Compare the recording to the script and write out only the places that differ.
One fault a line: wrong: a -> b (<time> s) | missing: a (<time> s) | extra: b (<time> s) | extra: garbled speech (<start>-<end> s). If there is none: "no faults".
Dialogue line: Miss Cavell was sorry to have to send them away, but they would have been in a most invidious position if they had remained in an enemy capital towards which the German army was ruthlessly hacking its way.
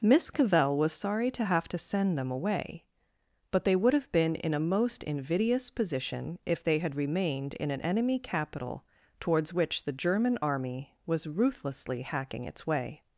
no faults